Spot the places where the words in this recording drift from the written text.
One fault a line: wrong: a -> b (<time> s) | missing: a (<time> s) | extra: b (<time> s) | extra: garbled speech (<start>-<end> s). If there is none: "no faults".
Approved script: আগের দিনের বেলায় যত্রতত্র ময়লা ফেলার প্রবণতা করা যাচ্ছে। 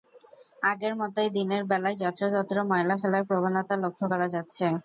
extra: মতোই (1.0 s)
extra: লক্ষ (3.8 s)